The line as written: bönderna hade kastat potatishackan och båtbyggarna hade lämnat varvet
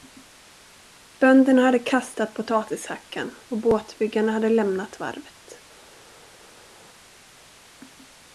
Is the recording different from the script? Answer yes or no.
no